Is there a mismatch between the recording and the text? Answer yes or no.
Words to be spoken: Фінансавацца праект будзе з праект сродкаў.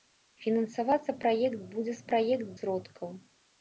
no